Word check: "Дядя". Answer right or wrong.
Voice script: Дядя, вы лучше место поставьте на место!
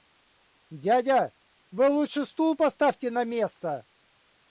right